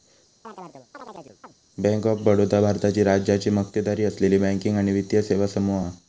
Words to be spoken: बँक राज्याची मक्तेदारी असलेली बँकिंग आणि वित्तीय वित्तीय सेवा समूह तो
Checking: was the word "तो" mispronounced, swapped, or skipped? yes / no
yes